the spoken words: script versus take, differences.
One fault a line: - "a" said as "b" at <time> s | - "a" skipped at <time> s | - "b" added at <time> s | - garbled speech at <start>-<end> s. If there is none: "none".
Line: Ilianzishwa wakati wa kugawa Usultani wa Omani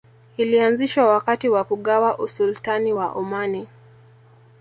none